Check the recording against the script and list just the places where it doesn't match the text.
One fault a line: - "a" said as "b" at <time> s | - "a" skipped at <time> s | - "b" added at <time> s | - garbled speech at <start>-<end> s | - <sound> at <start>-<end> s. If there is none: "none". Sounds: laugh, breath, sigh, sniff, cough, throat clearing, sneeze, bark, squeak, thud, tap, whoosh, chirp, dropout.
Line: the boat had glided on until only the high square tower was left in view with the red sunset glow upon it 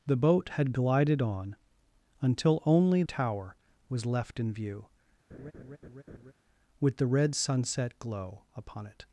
- "the high square" skipped at 3.0 s
- laugh at 5.3-6.3 s